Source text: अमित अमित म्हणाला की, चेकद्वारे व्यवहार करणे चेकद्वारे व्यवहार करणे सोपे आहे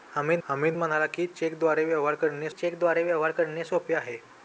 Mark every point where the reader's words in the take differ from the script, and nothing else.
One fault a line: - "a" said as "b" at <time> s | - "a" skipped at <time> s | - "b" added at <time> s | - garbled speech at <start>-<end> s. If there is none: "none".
none